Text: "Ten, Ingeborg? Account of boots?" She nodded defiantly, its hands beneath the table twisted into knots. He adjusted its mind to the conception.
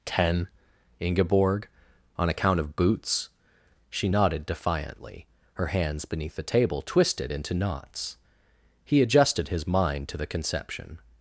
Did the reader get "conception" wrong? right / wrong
right